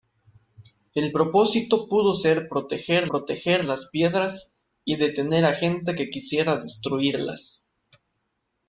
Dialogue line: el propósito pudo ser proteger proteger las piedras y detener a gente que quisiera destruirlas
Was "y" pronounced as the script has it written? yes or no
yes